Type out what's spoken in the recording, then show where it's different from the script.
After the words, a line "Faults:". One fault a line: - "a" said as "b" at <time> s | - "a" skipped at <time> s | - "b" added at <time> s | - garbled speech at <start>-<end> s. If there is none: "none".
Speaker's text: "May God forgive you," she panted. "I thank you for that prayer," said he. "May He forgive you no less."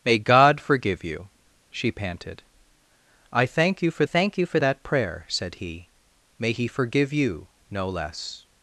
"May God forgive you," she panted. "I thank you for thank you for that prayer," said he. "May He forgive you no less."
Faults:
- "thank you for" added at 4.0 s